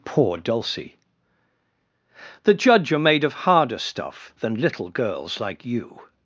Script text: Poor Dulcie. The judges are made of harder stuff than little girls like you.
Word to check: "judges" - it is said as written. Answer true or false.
false